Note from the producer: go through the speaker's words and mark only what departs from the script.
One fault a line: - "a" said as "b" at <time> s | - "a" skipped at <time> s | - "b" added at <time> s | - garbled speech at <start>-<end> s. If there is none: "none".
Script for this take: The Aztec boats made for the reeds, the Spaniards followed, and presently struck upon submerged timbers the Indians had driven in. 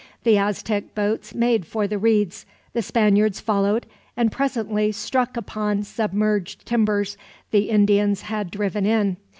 none